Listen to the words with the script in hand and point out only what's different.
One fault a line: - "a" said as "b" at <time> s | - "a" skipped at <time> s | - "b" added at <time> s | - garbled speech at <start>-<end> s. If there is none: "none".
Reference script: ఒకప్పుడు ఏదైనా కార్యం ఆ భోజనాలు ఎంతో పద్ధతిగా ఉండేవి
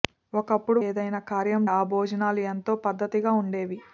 none